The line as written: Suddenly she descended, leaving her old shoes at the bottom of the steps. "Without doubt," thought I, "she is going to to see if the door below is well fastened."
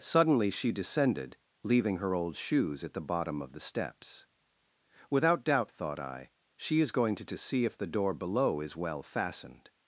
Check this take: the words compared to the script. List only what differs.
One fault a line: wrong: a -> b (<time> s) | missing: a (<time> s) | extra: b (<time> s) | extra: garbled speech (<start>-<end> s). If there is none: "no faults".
no faults